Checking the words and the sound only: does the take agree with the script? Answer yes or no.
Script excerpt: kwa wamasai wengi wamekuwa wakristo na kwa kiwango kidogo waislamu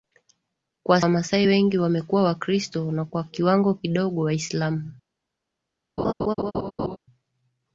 no